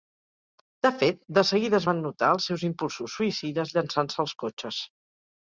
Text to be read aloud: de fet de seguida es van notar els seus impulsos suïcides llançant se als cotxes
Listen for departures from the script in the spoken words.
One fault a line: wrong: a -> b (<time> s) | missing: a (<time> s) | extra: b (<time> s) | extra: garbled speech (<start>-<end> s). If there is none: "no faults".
no faults